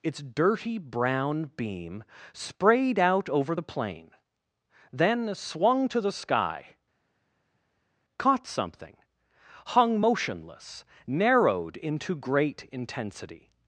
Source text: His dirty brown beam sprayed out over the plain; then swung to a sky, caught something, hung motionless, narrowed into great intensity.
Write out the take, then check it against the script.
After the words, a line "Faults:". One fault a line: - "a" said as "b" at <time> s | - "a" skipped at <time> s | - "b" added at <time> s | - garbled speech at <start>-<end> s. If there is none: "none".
Its dirty brown beam sprayed out over the plain; then swung to the sky, caught something, hung motionless, narrowed into great intensity.
Faults:
- "His" said as "Its" at 0.0 s
- "a" said as "the" at 6.0 s